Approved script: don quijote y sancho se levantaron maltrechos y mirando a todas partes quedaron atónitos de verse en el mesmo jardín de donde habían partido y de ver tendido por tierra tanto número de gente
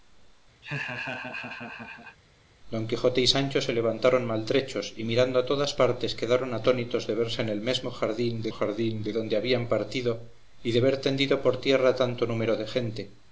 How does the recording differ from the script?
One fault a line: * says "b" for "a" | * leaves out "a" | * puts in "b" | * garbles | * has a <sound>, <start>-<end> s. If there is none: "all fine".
* has a laugh, 0.6-2.2 s
* puts in "jardín de"